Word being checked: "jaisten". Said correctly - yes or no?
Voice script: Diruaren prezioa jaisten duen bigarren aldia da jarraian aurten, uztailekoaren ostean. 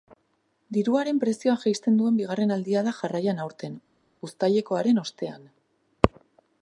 yes